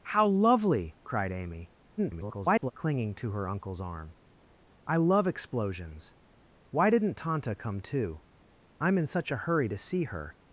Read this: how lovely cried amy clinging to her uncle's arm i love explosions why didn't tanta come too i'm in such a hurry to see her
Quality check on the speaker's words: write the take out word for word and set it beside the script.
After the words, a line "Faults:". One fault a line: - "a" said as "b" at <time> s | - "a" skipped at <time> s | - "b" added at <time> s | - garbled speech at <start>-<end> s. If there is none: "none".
how lovely cried amy [garbled] clinging to her uncle's arm i love explosions why didn't tanta come too i'm in such a hurry to see her
Faults:
- garbled speech at 2.0-2.7 s